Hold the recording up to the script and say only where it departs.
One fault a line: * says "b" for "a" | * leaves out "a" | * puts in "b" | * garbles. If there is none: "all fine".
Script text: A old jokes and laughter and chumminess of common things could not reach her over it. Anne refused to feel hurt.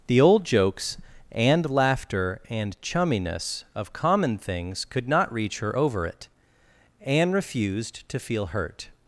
* says "The" for "A"